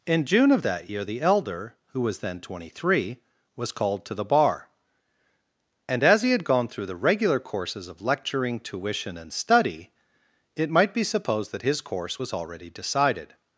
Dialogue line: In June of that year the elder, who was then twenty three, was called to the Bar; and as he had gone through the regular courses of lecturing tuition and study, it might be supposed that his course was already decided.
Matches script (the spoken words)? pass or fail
pass